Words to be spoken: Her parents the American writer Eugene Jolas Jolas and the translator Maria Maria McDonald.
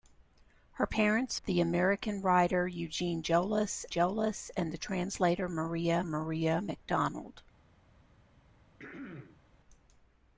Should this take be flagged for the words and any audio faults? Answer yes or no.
yes